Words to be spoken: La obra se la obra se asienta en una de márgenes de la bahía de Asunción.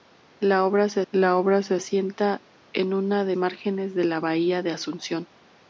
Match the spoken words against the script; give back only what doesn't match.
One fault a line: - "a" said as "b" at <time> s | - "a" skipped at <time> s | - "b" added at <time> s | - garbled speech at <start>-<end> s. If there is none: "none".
none